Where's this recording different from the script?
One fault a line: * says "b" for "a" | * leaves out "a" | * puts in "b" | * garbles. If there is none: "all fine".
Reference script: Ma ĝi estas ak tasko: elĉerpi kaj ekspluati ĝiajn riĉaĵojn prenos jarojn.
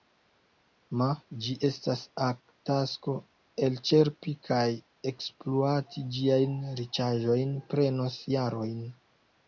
all fine